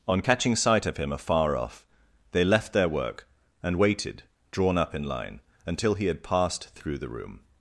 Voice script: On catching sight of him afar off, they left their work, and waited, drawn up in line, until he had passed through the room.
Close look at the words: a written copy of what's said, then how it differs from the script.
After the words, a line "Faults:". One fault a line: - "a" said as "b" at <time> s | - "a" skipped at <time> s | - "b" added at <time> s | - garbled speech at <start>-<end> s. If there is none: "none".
On catching sight of him afar off, they left their work, and waited, drawn up in line, until he had passed through the room.
Faults:
none